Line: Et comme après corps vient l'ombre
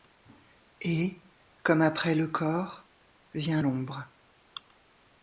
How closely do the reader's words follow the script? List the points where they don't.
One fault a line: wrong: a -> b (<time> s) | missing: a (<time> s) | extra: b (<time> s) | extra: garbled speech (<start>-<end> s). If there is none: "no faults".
extra: le (2.1 s)